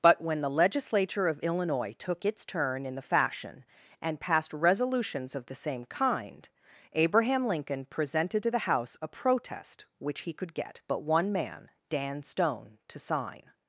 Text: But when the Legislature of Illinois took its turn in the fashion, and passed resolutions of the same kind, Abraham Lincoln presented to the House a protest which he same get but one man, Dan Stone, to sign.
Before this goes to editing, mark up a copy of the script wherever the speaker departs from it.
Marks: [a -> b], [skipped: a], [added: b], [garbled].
But when the Legislature of Illinois took its turn in the fashion, and passed resolutions of the same kind, Abraham Lincoln presented to the House a protest which he [same -> could] get but one man, Dan Stone, to sign.